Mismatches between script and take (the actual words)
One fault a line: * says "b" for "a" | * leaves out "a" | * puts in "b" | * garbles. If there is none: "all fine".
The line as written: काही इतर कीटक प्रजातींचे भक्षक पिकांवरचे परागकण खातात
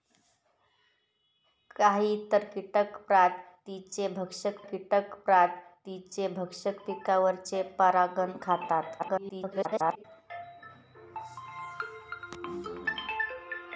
* puts in "कीटक प्रजातींचे भक्षक"
* garbles